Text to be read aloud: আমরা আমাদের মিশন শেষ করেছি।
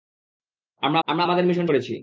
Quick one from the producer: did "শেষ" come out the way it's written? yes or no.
no